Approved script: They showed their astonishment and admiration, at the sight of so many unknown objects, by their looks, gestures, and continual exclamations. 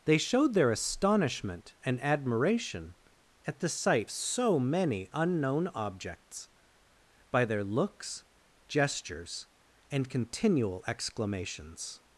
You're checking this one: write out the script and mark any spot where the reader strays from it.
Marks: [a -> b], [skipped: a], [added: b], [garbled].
They showed their astonishment and admiration, at the sight [skipped: of] so many unknown objects, by their looks, gestures, and continual exclamations.